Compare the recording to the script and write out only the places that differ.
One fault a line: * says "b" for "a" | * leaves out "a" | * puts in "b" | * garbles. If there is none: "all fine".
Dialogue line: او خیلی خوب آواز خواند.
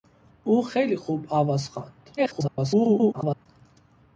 * garbles